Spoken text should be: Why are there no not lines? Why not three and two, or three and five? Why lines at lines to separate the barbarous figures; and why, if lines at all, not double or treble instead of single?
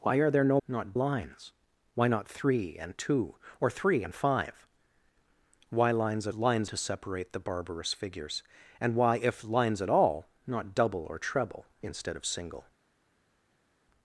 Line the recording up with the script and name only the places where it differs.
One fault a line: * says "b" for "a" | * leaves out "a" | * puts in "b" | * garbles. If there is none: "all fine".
all fine